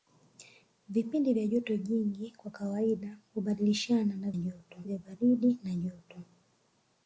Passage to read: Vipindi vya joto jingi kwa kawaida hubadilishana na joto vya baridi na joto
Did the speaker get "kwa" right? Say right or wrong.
right